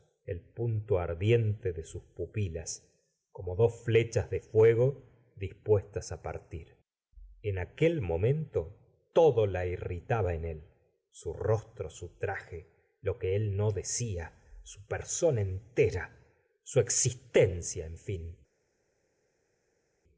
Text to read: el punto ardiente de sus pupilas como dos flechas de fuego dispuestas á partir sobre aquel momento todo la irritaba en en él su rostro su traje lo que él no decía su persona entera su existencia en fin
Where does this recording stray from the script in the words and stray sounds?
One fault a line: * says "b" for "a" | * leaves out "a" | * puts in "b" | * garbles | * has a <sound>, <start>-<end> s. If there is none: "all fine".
* says "en" for "sobre"
* leaves out "en"